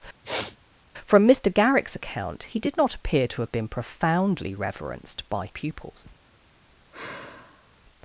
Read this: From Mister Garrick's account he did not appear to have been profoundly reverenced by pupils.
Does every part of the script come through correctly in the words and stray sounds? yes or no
no